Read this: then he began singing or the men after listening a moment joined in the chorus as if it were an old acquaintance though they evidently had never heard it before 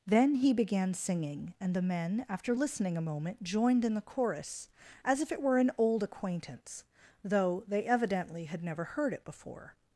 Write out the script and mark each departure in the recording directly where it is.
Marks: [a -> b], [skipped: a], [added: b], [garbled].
then he began singing [or -> and] the men after listening a moment joined in the chorus as if it were an old acquaintance though they evidently had never heard it before